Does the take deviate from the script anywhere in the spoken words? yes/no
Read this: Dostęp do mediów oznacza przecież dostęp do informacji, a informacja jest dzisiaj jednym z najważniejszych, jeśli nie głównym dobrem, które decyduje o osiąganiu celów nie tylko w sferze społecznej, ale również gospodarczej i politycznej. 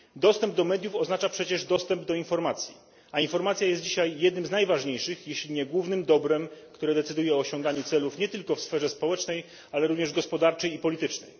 no